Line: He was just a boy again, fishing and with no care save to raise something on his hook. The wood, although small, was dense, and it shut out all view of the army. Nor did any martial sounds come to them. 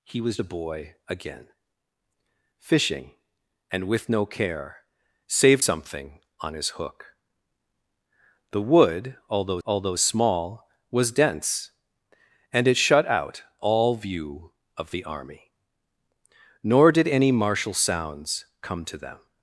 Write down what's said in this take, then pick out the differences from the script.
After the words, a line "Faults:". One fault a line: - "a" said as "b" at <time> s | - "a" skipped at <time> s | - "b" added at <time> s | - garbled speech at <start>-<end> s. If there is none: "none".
He was a boy again, fishing and with no care save something on his hook. The wood, although although small, was dense, and it shut out all view of the army. Nor did any martial sounds come to them.
Faults:
- "just" skipped at 0.4 s
- "to raise" skipped at 5.6 s
- "although" added at 9.7 s